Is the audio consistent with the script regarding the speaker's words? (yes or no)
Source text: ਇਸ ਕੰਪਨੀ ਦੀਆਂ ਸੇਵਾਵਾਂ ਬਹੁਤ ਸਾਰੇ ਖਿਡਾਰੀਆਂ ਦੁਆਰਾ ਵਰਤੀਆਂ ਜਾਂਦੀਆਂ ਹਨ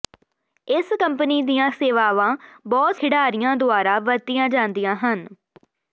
no